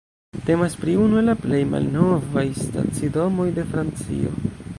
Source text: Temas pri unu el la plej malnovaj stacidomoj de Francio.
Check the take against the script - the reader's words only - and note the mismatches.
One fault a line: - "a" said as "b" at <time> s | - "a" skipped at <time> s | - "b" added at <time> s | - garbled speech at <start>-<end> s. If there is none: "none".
none